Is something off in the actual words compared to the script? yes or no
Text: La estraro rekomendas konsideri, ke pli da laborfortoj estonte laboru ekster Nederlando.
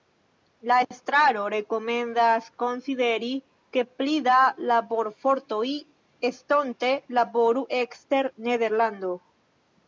no